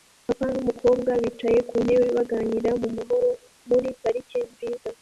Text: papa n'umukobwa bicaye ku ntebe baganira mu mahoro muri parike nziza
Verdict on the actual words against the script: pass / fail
pass